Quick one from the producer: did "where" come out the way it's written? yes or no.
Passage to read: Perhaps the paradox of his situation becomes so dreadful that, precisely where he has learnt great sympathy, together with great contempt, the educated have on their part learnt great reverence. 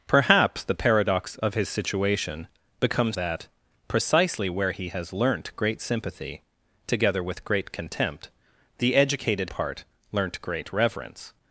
yes